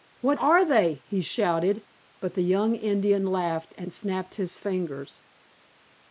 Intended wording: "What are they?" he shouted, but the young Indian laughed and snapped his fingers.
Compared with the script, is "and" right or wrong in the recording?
right